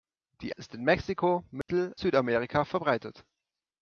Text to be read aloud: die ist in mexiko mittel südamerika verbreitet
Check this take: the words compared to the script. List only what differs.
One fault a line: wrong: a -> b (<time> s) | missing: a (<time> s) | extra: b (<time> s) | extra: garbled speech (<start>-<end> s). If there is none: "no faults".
no faults